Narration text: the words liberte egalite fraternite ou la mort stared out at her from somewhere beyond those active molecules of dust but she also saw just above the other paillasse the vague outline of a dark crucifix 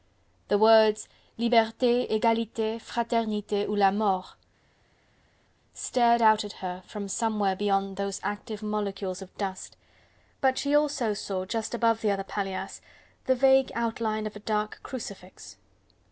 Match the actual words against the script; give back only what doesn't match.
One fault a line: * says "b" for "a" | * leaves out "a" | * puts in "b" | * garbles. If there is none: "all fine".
all fine